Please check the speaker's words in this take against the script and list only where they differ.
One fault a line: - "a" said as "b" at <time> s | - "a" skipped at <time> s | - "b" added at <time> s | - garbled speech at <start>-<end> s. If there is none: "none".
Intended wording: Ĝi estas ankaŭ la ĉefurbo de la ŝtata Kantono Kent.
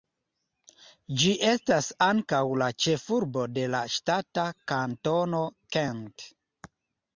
none